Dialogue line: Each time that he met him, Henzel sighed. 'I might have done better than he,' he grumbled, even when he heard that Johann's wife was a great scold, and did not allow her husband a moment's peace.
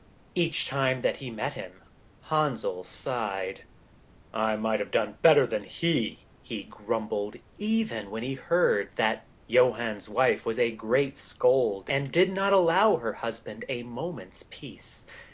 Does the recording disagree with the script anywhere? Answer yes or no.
no